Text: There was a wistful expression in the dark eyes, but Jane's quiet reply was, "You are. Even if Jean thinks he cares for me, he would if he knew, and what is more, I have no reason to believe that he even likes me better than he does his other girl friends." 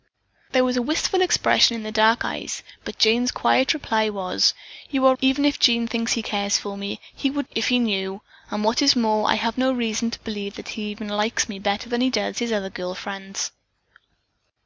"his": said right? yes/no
yes